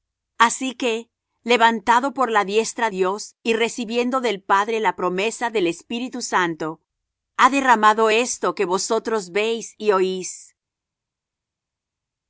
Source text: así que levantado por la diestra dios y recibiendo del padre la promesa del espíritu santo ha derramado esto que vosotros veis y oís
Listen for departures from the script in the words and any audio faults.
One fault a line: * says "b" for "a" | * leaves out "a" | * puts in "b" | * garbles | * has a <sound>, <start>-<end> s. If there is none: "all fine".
all fine